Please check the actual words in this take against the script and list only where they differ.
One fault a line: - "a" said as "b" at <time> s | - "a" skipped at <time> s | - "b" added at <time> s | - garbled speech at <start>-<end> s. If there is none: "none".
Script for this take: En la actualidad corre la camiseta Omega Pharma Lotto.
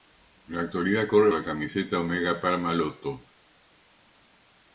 none